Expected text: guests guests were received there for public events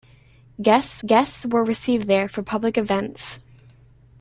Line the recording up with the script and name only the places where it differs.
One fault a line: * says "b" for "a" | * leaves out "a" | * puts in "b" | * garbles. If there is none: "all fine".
all fine